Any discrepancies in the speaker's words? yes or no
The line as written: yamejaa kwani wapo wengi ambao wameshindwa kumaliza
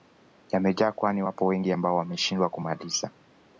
no